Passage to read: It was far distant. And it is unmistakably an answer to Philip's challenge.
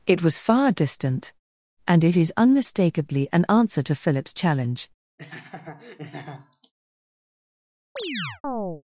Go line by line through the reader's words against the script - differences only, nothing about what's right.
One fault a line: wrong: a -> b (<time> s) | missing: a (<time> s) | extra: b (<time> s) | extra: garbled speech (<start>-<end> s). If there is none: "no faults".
no faults